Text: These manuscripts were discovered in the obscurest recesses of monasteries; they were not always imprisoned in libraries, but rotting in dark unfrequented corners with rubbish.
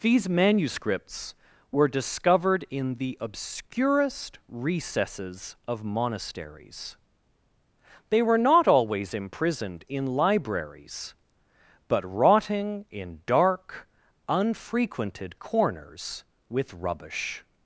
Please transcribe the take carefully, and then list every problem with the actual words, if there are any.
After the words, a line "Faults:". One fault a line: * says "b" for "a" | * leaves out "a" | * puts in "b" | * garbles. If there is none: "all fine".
These manuscripts were discovered in the obscurest recesses of monasteries; they were not always imprisoned in libraries, but rotting in dark unfrequented corners with rubbish.
Faults:
all fine